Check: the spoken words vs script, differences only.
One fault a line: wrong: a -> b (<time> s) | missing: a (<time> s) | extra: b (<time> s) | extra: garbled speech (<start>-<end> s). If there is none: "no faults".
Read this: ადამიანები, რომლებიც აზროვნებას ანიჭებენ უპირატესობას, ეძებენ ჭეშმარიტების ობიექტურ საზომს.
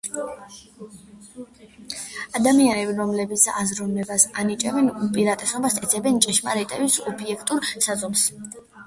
no faults